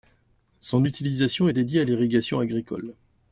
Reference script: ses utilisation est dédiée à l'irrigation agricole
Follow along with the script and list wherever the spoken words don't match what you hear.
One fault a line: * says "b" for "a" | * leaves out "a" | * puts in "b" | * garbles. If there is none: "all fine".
* says "son" for "ses"